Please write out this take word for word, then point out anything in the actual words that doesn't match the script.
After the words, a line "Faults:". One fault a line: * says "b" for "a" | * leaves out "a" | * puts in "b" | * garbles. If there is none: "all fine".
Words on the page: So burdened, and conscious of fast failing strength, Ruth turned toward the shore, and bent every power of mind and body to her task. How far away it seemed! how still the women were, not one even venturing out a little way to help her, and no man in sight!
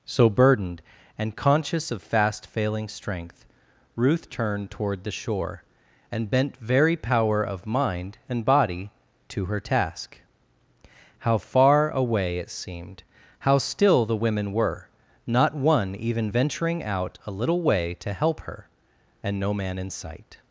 So burdened, and conscious of fast failing strength, Ruth turned toward the shore, and bent very power of mind and body to her task. How far away it seemed! how still the women were, not one even venturing out a little way to help her, and no man in sight!
Faults:
* says "very" for "every"